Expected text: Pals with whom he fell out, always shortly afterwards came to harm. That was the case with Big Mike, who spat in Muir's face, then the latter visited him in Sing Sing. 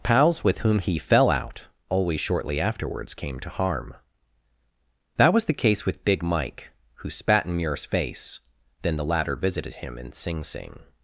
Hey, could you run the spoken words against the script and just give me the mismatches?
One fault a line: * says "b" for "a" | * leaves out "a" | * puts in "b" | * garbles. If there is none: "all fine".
all fine